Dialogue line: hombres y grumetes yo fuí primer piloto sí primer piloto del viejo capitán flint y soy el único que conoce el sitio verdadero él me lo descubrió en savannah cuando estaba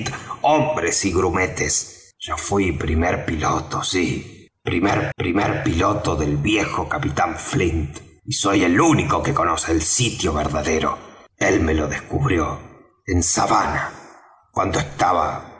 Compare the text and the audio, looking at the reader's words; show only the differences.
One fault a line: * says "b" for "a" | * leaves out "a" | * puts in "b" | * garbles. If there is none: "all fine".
* puts in "primer"